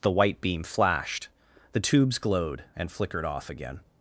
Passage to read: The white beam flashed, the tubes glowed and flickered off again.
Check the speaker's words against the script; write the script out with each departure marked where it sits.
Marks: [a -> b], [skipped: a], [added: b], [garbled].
The white beam flashed, the tubes glowed and flickered off again.